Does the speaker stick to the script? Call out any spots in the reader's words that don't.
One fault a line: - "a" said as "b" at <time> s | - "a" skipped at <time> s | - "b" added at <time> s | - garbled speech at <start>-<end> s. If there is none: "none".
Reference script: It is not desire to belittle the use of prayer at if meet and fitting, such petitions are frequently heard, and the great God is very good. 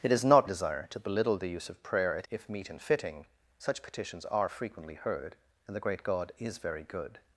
none